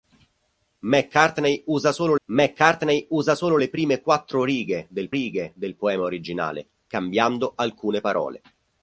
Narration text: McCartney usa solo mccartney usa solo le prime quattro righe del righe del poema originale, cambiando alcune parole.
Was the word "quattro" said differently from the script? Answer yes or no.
no